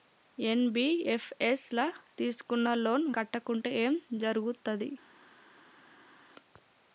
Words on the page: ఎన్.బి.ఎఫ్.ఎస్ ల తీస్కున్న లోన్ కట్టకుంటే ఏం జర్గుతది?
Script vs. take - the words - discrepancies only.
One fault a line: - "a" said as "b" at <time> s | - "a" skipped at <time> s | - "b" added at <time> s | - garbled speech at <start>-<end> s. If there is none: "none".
none